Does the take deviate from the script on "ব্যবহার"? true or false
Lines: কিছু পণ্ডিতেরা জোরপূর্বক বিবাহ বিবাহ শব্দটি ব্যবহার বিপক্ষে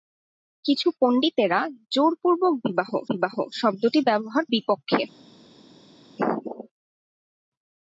false